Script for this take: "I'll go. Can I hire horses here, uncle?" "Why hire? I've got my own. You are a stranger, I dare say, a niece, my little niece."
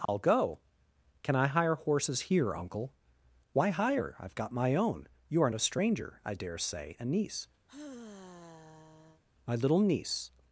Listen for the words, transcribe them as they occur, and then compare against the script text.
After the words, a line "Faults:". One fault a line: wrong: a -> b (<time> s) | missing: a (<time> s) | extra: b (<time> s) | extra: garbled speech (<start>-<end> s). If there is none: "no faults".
"I'll go. Can I hire horses here, uncle?" "Why hire? I've got my own. You are a stranger, I dare say, a niece, my little niece."
Faults:
no faults